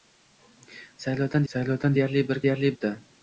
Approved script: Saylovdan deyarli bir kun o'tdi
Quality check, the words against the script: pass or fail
fail